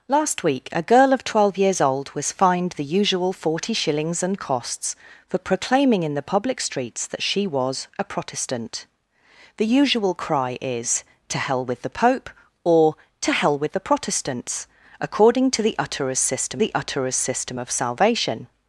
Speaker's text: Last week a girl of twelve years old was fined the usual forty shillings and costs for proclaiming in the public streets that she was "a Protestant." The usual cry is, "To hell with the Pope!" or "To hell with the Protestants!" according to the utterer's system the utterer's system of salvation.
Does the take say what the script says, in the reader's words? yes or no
yes